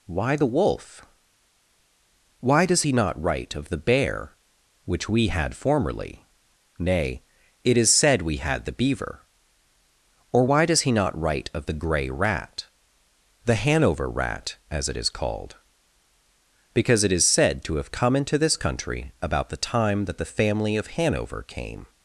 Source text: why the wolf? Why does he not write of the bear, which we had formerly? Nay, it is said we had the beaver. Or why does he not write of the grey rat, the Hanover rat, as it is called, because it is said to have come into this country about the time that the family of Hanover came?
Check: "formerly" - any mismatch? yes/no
no